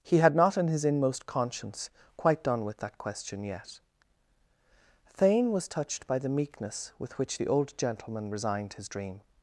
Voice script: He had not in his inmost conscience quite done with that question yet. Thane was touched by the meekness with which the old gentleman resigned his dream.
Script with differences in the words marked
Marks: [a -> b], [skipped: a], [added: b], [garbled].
He had not in his inmost conscience quite done with that question yet. Thane was touched by the meekness with which the old gentleman resigned his dream.